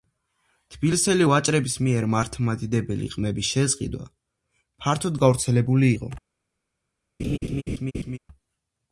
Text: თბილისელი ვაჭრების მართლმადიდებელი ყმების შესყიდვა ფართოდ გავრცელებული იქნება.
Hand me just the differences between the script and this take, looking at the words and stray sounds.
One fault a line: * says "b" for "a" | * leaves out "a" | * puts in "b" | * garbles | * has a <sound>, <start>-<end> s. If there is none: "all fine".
* puts in "მიერ"
* says "იყო" for "იქნება"
* has a laugh, 7.2-8.2 s